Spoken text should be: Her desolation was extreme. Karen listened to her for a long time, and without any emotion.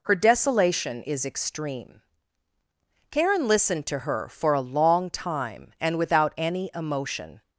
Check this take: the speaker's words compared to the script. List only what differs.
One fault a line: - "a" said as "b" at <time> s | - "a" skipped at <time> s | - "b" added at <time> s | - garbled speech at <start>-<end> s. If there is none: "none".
- "was" said as "is" at 1.0 s